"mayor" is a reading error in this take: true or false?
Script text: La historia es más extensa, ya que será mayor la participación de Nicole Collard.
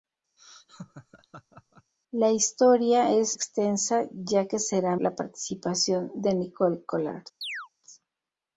true